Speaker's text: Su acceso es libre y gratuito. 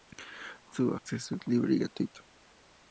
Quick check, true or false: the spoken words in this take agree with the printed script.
true